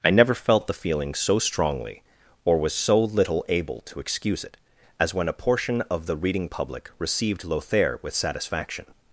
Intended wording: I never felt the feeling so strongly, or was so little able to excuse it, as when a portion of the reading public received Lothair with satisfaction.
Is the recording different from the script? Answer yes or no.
no